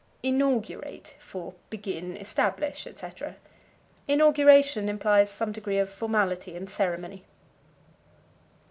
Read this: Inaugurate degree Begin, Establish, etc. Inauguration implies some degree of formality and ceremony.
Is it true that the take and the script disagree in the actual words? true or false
true